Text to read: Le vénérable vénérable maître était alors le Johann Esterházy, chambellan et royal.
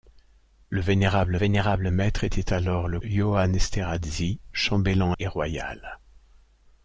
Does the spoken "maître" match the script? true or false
true